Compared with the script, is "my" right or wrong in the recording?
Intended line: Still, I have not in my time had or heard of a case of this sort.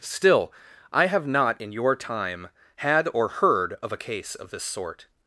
wrong